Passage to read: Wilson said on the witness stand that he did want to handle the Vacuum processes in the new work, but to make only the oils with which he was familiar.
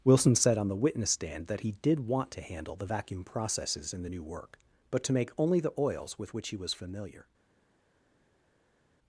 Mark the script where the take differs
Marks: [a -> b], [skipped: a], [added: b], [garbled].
Wilson said on the witness stand that he did want to handle the Vacuum processes in the new work, but to make only the oils with which he was familiar.